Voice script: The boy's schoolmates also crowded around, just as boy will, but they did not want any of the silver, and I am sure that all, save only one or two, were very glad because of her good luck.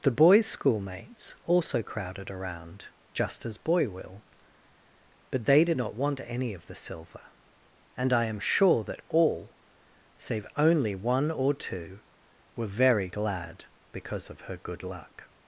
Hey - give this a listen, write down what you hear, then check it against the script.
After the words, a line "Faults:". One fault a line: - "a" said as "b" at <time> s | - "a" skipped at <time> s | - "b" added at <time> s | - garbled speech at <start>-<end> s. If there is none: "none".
The boy's schoolmates also crowded around, just as boy will, but they did not want any of the silver, and I am sure that all, save only one or two, were very glad because of her good luck.
Faults:
none